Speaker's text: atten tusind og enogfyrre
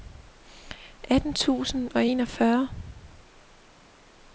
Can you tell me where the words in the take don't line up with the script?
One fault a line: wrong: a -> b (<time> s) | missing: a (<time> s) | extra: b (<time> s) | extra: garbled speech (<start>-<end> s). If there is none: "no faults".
no faults